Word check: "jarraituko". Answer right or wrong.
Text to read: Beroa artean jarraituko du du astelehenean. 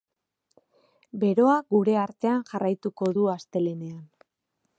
right